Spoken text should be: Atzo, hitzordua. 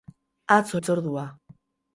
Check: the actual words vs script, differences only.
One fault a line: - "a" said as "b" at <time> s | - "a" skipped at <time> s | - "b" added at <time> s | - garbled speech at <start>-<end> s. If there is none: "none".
none